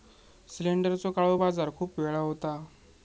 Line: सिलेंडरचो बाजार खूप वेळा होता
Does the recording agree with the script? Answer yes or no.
no